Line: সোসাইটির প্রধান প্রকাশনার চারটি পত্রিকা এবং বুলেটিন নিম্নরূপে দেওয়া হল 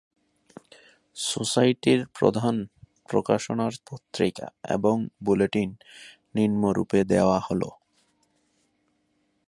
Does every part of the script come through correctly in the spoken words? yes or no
no